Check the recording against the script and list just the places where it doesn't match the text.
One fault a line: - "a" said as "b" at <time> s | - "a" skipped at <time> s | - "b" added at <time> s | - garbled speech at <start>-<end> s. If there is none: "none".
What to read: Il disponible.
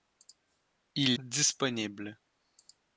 none